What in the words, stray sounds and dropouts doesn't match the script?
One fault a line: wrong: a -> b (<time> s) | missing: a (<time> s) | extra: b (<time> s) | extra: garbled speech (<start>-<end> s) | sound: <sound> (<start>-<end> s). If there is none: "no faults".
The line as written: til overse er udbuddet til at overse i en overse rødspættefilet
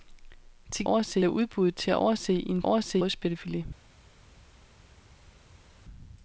no faults